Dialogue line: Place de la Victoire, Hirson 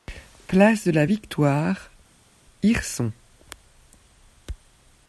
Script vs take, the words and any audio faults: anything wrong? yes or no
no